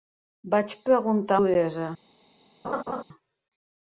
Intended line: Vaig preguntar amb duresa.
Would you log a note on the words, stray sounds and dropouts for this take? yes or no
yes